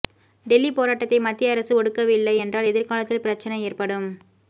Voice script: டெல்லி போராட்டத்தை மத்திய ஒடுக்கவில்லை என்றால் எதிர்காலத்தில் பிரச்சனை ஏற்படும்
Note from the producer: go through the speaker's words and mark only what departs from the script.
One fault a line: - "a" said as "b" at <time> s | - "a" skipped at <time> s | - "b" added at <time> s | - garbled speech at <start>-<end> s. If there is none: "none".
- "அரசு" added at 1.5 s